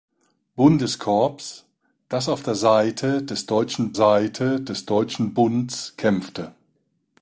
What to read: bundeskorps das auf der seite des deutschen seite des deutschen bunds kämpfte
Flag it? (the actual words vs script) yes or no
no